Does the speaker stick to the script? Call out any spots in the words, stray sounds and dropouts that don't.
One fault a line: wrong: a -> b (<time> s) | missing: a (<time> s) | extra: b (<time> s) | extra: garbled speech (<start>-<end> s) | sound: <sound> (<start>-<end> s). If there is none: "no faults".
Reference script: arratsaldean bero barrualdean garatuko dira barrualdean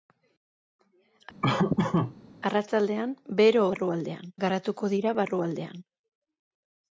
sound: laugh (1.4-2.2 s)